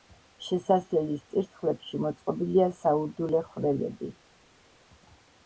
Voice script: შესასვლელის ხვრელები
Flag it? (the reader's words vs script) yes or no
yes